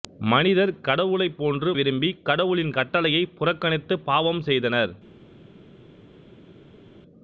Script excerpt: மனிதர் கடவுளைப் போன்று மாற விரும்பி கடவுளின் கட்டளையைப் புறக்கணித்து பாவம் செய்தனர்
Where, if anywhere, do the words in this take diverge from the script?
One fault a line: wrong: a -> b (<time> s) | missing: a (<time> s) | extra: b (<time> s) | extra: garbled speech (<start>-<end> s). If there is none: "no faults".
missing: மாற (1.7 s)